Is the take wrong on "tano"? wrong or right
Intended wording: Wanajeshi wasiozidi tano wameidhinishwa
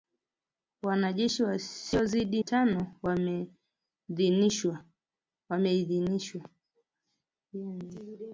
right